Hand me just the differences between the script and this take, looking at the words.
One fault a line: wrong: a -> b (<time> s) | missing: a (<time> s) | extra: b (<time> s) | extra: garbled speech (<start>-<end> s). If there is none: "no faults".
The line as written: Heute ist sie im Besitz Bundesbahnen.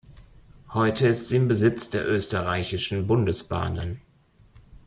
extra: der Österreichischen (1.9 s)